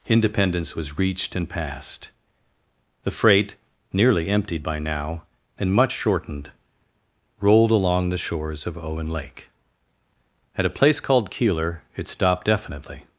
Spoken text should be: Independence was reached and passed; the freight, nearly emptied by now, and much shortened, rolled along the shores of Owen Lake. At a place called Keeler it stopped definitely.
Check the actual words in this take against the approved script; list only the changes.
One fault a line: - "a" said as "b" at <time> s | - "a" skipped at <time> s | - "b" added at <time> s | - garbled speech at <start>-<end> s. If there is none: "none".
none